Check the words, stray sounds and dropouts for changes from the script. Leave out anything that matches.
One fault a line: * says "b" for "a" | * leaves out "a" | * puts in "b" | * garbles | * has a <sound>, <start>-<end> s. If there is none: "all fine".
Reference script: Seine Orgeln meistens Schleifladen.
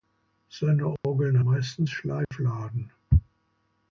* has a dropout, 1.0-1.0 s
* has a dropout, 2.2-2.3 s